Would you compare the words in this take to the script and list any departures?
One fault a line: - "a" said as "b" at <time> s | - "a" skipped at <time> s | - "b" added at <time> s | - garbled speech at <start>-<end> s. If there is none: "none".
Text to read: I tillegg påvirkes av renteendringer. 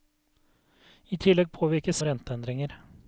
none